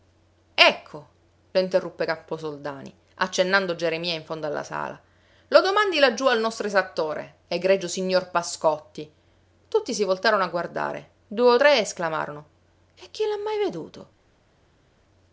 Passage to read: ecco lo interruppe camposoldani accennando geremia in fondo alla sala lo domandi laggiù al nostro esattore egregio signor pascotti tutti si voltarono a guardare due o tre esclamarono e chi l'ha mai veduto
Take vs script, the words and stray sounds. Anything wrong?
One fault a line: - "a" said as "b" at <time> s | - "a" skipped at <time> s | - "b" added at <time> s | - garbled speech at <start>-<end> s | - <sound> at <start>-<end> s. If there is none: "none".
none